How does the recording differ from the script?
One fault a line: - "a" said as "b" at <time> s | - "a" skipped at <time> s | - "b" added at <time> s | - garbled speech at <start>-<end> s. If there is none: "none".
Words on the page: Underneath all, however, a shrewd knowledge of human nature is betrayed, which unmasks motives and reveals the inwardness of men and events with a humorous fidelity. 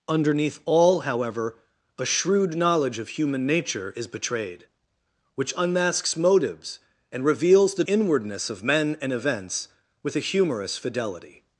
none